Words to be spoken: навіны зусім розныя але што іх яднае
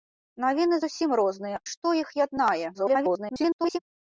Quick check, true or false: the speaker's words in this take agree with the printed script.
false